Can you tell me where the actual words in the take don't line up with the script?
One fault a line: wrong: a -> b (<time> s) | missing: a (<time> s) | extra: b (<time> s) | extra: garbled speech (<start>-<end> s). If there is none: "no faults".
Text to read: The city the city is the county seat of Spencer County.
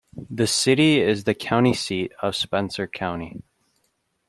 missing: the city (1.0 s)